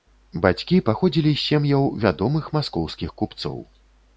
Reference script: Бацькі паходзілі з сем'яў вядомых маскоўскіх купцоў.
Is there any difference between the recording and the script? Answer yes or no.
no